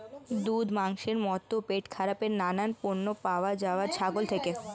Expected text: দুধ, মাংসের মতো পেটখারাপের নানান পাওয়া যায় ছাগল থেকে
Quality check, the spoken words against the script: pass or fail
fail